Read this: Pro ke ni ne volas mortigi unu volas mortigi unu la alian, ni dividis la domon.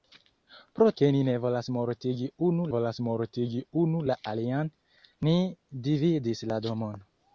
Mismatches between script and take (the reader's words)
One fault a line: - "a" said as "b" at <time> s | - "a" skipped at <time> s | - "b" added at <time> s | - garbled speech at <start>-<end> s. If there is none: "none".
none